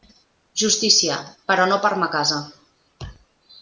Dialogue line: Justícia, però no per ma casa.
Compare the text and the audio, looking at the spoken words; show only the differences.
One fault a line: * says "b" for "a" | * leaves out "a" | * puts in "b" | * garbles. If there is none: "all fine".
all fine